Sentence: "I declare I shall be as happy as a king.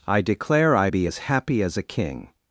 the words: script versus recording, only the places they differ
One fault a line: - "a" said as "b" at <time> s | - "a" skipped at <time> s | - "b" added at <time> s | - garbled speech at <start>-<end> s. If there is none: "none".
- "shall" skipped at 0.9 s